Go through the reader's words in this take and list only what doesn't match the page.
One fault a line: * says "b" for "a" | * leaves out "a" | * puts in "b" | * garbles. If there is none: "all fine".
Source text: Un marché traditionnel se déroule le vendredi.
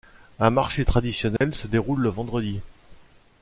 all fine